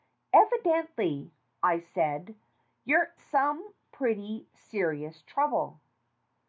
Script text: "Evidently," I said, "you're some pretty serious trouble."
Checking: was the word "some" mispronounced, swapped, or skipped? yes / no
no